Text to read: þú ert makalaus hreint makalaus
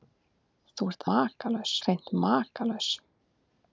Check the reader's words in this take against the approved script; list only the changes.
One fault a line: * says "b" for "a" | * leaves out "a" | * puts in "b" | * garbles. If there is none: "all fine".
all fine